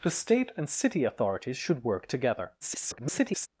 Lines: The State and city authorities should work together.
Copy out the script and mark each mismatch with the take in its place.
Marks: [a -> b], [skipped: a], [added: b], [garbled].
The State and city authorities should work together. [garbled]